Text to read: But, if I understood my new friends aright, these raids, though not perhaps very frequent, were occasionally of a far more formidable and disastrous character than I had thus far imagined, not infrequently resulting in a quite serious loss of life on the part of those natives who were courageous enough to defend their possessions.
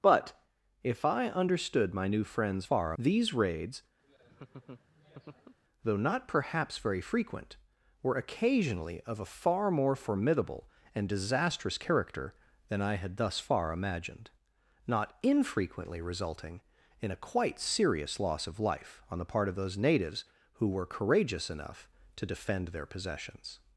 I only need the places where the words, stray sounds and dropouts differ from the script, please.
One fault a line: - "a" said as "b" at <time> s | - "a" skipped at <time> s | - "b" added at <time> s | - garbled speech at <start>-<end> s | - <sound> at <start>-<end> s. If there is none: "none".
- "aright" said as "far" at 2.6 s
- laugh at 4.0-5.6 s